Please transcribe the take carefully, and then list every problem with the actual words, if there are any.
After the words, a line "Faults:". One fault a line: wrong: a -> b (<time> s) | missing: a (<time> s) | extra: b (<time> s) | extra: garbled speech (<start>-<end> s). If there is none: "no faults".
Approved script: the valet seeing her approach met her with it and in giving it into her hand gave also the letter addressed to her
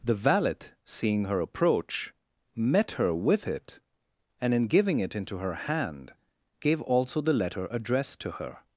the valet seeing her approach met her with it and in giving it into her hand gave also the letter addressed to her
Faults:
no faults